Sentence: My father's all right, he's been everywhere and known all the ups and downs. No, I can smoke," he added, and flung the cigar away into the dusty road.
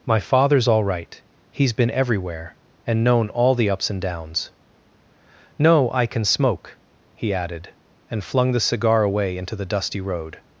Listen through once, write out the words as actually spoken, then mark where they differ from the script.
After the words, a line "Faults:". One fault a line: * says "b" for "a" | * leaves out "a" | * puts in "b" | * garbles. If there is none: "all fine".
My father's all right, he's been everywhere and known all the ups and downs. No, I can smoke," he added, and flung the cigar away into the dusty road.
Faults:
all fine